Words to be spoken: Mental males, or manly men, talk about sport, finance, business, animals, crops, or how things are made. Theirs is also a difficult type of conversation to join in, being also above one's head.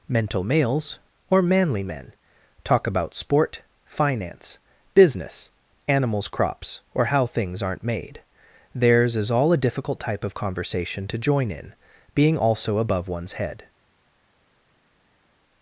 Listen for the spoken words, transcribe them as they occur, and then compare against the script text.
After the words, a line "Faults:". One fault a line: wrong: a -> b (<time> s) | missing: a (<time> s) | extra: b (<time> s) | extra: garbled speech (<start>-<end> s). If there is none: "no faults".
Mental males, or manly men, talk about sport, finance, business, animals, crops, or how things aren't made. Theirs is all a difficult type of conversation to join in, being also above one's head.
Faults:
wrong: are -> aren't (7.6 s)
wrong: also -> all (9.3 s)